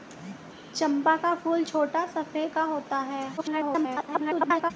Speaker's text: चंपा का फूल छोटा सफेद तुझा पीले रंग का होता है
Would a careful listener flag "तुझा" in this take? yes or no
yes